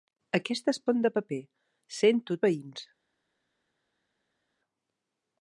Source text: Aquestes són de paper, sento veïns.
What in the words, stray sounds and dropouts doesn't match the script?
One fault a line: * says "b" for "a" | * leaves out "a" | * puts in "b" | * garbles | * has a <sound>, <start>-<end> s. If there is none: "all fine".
all fine